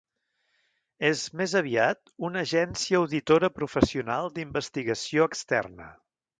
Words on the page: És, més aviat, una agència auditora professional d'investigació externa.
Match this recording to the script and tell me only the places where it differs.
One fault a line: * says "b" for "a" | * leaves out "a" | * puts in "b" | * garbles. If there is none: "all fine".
all fine